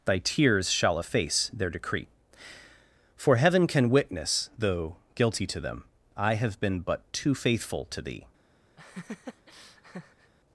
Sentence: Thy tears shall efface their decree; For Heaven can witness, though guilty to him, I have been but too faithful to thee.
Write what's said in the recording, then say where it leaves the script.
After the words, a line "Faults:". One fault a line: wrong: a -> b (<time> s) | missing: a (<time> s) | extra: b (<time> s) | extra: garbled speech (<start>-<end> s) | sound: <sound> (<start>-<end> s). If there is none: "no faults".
Thy tears shall efface their decree; For Heaven can witness, though guilty to them, I have been but too faithful to thee.
Faults:
wrong: him -> them (5.6 s)
sound: laugh (8.8-10.3 s)